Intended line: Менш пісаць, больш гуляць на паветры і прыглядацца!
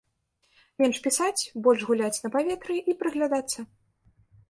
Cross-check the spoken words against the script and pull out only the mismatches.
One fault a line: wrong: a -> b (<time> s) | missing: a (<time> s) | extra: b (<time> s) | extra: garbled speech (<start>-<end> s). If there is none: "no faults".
no faults